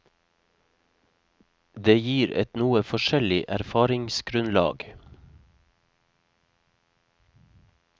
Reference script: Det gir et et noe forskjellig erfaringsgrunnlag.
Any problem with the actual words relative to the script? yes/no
yes